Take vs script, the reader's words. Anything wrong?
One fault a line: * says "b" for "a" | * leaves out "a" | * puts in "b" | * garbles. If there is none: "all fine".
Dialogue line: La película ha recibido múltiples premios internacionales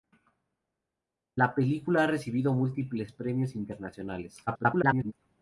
* garbles